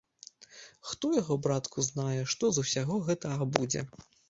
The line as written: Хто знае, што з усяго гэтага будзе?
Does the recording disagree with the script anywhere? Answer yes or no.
yes